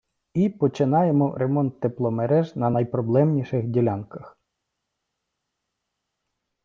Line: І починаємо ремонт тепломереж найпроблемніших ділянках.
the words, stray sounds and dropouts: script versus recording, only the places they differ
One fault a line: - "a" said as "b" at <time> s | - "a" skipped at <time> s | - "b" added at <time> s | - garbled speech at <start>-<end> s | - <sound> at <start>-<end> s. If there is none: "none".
- "на" added at 2.6 s